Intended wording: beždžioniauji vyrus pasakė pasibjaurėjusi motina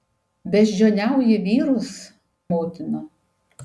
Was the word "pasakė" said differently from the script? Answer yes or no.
yes